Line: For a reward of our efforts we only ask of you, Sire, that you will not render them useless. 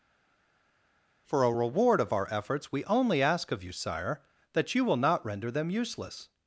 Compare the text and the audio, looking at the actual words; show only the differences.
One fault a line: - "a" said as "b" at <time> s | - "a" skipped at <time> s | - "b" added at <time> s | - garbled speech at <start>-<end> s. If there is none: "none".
none